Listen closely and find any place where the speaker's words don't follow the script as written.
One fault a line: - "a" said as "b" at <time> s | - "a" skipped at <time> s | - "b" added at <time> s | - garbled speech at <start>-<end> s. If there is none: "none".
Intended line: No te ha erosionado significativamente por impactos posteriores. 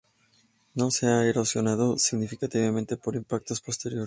- "te" said as "se" at 0.9 s